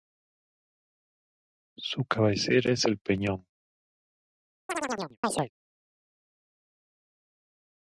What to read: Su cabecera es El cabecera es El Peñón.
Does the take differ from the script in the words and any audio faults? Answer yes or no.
yes